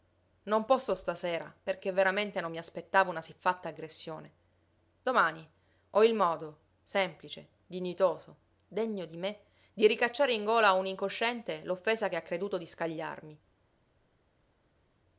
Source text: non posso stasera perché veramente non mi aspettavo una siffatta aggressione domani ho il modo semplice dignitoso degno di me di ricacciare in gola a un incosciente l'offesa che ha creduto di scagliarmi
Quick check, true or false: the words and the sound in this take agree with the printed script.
true